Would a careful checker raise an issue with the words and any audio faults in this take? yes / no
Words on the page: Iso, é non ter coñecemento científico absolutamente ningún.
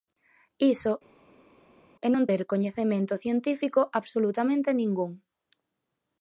no